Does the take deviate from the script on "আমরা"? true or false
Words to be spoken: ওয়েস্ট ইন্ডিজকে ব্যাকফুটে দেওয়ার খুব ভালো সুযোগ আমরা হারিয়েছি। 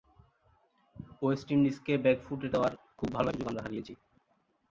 false